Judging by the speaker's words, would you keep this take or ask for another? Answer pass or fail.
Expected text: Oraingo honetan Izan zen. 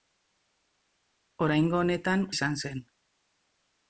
pass